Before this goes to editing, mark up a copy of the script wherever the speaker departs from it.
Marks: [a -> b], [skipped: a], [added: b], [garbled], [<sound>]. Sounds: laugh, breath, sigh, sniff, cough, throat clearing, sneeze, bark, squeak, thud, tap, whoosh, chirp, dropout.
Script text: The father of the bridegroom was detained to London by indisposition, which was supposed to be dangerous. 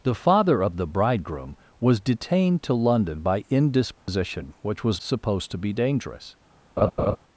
The father of the bridegroom was detained to London by indisposition, [dropout] which was supposed to be dangerous. [laugh]